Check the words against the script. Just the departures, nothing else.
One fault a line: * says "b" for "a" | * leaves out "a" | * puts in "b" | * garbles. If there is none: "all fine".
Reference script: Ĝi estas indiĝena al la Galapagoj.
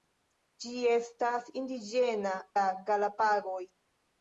* leaves out "al"